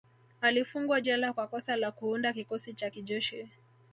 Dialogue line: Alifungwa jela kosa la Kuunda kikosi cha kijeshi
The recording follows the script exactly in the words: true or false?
false